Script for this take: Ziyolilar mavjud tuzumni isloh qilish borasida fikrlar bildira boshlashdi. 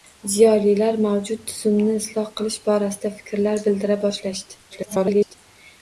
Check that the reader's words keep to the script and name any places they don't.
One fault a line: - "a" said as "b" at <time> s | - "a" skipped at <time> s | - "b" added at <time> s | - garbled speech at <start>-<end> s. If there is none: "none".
- garbled speech at 4.7-5.4 s